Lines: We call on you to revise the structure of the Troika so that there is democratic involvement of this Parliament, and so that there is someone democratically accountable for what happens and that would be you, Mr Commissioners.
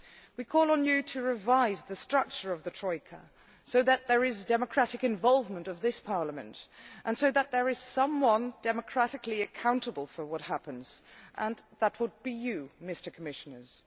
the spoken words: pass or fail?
pass